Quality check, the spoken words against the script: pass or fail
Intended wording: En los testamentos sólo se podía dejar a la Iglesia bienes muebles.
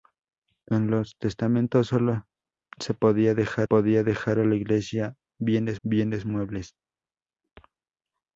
fail